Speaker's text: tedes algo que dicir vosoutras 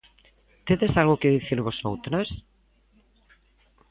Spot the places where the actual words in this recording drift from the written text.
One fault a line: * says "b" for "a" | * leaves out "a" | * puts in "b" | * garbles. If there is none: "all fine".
all fine